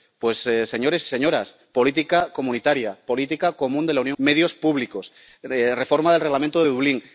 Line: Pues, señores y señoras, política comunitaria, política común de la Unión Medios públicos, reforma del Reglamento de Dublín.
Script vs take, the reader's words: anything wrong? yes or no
no